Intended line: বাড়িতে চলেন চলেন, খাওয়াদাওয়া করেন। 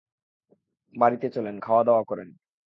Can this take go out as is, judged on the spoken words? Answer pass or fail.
fail